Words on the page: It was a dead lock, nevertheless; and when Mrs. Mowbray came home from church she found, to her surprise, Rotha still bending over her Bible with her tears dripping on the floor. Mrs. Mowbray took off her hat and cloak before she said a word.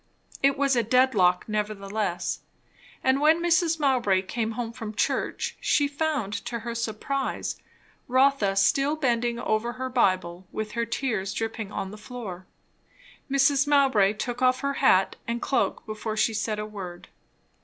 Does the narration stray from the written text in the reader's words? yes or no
no